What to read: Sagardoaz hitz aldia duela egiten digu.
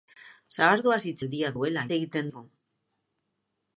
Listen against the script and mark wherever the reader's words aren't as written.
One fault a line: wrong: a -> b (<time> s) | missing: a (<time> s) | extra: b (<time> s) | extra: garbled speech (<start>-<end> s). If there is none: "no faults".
no faults